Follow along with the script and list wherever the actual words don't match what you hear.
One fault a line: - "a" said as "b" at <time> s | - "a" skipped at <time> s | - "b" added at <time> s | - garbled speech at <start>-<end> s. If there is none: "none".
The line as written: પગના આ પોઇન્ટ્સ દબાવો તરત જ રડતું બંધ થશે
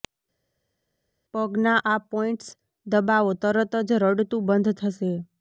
none